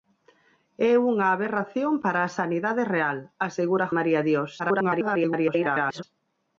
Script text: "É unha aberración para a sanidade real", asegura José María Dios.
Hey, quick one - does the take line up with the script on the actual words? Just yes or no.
no